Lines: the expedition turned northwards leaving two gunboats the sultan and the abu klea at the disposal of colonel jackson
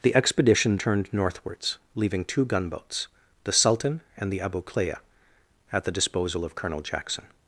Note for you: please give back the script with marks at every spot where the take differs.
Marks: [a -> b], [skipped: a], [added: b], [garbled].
the expedition turned northwards leaving two gunboats the sultan and the abu klea at the disposal of colonel jackson